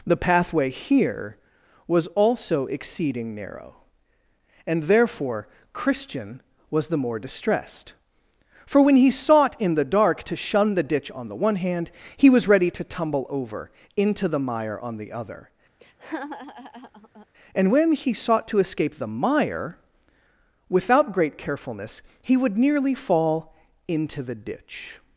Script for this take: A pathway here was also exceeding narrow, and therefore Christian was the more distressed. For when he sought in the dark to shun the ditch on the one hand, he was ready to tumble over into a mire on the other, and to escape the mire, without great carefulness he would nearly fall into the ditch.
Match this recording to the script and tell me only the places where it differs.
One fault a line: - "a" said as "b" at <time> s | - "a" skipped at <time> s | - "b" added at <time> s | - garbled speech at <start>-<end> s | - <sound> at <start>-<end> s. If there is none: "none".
- "A" said as "The" at 0.1 s
- "a" said as "the" at 14.3 s
- laugh at 15.8-17.3 s
- "when he sought" added at 17.7 s